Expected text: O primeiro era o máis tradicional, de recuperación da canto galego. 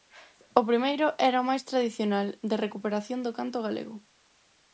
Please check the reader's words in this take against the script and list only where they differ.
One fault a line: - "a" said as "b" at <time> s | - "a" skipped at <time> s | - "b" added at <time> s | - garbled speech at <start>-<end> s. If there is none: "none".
- "da" said as "do" at 3.2 s